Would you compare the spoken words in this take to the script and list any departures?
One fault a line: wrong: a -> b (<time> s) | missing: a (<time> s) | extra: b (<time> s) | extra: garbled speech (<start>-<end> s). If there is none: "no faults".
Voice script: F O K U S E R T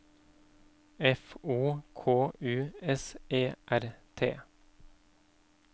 no faults